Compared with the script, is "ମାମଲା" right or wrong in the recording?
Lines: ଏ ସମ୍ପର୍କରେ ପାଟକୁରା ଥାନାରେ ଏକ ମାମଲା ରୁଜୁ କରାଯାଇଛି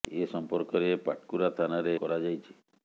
wrong